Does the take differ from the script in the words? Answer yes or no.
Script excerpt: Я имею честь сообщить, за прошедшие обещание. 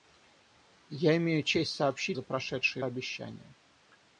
no